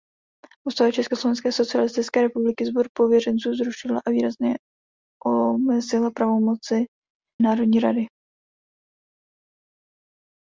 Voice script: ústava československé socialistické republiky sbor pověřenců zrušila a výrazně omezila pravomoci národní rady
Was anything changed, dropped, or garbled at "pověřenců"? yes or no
no